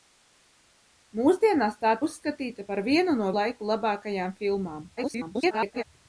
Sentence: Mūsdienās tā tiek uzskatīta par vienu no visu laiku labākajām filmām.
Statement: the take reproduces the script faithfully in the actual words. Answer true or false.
false